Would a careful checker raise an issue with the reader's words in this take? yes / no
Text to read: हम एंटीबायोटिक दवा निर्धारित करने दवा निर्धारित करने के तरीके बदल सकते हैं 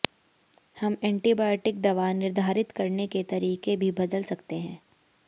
yes